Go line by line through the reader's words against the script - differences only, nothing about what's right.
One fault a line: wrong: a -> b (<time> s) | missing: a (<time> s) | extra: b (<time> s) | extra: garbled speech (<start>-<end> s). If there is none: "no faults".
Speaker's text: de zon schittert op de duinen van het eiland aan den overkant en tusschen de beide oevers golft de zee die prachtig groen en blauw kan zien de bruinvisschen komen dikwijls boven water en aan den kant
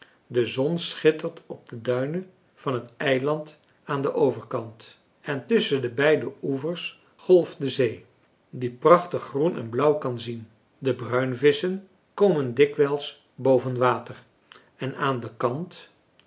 no faults